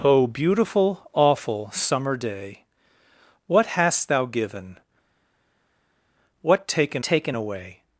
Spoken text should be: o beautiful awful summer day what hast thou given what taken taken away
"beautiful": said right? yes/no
yes